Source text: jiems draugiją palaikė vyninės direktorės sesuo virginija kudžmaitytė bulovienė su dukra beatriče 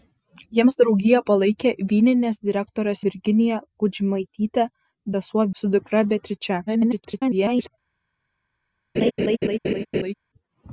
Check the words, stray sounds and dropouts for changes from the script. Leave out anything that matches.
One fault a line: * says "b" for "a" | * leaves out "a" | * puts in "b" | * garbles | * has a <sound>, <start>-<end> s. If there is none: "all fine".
* leaves out "sesuo"
* says "sesuo" for "bulovienė"
* garbles
* has a laugh, 8.9-10.1 s